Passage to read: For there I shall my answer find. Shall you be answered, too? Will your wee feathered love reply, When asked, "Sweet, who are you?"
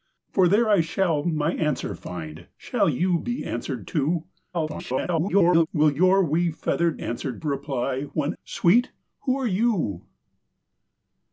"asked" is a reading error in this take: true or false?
true